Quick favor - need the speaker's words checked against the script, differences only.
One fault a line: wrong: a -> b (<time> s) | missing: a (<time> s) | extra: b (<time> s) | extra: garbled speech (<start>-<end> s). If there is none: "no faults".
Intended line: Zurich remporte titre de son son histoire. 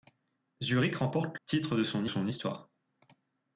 no faults